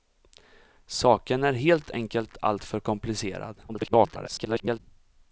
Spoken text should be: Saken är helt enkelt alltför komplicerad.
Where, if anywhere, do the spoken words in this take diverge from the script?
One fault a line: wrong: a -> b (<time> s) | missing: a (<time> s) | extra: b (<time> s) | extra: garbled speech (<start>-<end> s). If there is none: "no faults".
extra: garbled speech (3.7-4.8 s)